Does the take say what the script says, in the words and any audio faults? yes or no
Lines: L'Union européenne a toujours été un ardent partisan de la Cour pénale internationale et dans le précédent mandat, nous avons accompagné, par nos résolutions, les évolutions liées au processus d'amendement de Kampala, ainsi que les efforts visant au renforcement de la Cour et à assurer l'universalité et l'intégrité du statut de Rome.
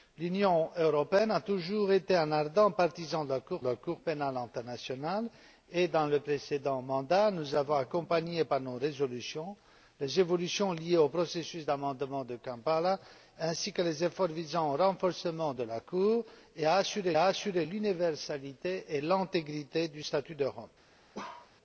no